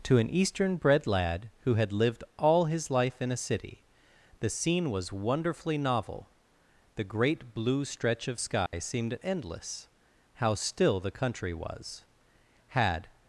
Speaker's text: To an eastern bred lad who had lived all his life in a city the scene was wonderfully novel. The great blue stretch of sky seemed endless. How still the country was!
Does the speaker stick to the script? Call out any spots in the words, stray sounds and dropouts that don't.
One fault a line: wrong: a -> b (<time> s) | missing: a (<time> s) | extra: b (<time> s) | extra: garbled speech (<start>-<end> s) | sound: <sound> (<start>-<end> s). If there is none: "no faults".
sound: dropout (8.7-8.7 s)
extra: Had (12.7 s)